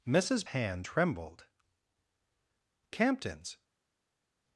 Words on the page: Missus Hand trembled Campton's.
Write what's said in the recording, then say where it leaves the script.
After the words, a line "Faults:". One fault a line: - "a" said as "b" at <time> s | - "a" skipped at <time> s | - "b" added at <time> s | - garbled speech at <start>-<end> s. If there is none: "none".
Missus Hand trembled Campton's.
Faults:
none